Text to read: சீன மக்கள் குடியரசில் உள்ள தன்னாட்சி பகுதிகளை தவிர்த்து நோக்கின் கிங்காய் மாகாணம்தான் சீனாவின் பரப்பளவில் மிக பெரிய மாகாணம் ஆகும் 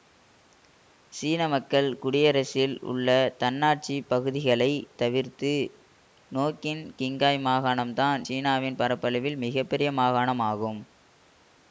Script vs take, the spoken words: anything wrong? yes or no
no